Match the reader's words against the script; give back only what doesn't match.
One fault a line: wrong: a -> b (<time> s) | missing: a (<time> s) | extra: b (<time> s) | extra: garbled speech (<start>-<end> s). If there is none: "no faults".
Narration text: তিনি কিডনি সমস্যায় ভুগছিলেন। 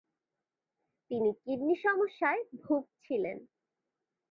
no faults